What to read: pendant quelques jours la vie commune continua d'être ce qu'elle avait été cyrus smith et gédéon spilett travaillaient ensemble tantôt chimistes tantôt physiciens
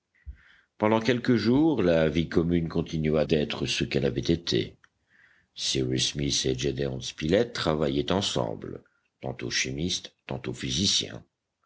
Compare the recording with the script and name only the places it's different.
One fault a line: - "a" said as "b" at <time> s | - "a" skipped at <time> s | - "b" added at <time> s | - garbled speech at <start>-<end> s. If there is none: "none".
none